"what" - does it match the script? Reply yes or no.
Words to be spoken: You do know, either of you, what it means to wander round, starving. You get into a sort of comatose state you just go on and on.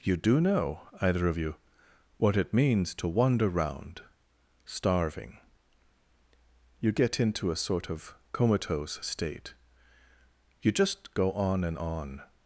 yes